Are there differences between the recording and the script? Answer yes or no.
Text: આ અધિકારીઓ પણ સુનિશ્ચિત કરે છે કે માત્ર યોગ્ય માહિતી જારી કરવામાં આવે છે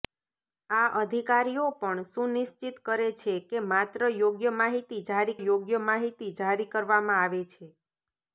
yes